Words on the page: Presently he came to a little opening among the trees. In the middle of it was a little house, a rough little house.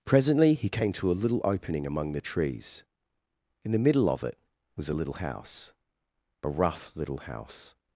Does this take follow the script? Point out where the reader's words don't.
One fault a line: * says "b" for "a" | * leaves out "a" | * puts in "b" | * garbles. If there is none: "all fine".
all fine